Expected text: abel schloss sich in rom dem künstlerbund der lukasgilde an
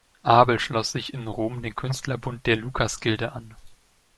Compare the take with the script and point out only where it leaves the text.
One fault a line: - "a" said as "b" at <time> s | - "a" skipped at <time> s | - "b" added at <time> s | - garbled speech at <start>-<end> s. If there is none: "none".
none